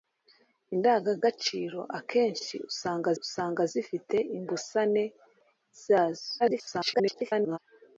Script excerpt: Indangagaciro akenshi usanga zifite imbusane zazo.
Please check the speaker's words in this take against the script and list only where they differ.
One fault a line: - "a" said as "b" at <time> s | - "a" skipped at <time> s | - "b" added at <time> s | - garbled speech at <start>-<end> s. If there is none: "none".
- "usanga" added at 3.2 s
- garbled speech at 6.4-7.6 s